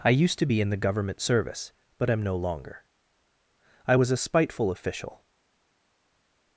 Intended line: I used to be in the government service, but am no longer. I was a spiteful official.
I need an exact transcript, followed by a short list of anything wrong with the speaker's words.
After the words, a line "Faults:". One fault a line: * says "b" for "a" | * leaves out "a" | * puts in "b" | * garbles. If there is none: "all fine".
I used to be in the government service, but am no longer. I was a spiteful official.
Faults:
all fine